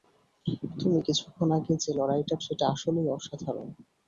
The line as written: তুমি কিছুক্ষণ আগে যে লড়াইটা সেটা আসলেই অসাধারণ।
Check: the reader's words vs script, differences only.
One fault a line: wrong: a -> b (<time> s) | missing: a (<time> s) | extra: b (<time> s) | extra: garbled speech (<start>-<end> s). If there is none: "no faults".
no faults